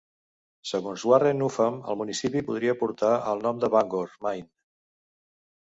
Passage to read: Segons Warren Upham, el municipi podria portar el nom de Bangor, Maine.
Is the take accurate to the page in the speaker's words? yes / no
yes